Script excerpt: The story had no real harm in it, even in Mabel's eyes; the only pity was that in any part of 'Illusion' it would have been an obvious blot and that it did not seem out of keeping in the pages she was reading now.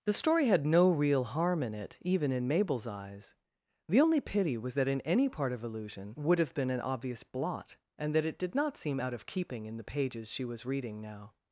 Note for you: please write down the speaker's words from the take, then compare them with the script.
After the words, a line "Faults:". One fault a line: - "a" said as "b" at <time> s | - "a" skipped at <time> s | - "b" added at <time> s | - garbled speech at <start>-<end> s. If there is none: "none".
The story had no real harm in it, even in Mabel's eyes; the only pity was that in any part of 'Illusion' would have been an obvious blot and that it did not seem out of keeping in the pages she was reading now.
Faults:
- "it" skipped at 6.1 s